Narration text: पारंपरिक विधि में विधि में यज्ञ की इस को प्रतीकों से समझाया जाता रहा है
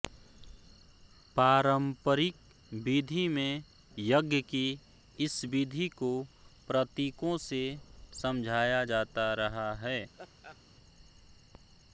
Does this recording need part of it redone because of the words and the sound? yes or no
yes